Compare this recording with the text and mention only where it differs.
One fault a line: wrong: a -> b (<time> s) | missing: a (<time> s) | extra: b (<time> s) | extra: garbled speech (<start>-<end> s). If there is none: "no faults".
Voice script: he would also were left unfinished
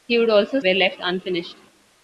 no faults